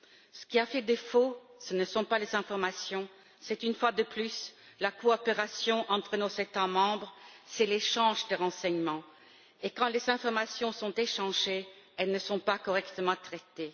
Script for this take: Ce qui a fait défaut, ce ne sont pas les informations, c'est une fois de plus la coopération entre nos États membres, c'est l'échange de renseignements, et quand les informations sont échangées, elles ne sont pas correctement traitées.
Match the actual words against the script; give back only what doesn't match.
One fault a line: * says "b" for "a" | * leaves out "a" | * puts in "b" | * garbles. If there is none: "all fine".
all fine